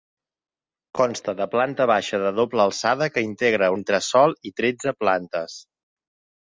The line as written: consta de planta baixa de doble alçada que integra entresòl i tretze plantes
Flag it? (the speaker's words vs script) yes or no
no